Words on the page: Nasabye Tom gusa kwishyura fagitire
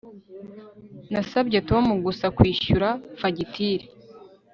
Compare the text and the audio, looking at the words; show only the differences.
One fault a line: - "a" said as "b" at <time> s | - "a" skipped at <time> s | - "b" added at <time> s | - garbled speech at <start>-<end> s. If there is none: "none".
none